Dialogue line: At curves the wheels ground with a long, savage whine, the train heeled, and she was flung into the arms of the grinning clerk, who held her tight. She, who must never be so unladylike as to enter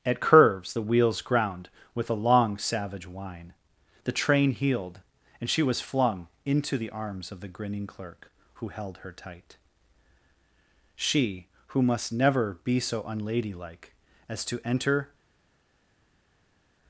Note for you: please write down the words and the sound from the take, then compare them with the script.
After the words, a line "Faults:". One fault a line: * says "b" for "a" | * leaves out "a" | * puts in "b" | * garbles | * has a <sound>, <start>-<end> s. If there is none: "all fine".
At curves the wheels ground with a long, savage whine, the train heeled, and she was flung into the arms of the grinning clerk, who held her tight. She, who must never be so unladylike as to enter
Faults:
all fine